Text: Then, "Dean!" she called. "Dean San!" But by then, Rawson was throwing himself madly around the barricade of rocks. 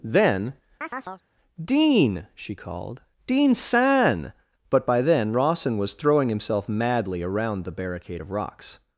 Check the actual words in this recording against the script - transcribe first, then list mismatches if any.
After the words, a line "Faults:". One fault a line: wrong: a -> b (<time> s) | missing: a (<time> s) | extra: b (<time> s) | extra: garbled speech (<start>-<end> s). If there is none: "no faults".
Then, "Dean!" she called. "Dean San!" But by then, Rawson was throwing himself madly around the barricade of rocks.
Faults:
no faults